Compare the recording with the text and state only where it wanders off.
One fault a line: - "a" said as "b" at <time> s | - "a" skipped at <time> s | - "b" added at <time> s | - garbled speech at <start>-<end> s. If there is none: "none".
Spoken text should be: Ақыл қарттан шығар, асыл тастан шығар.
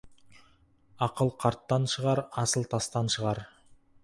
none